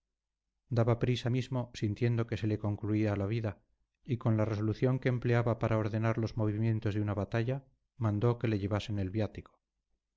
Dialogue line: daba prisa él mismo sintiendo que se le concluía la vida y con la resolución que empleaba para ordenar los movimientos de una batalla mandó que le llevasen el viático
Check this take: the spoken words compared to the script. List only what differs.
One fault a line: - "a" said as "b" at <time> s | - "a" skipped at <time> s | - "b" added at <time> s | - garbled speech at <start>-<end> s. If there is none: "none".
- "él" skipped at 1.3 s